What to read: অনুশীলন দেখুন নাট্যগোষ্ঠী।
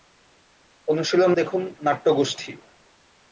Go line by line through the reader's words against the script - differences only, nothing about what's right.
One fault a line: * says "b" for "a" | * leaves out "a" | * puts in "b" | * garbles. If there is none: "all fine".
all fine